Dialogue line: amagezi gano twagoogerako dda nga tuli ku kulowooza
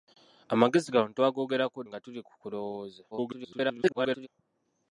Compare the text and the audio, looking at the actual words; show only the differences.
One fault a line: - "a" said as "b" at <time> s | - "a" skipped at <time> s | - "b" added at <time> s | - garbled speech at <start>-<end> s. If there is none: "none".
- "dda" skipped at 1.8 s
- garbled speech at 3.1-4.3 s